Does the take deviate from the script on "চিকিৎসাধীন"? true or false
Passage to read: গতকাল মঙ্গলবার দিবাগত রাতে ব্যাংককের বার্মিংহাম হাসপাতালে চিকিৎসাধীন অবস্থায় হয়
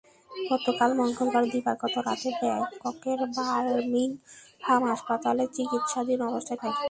false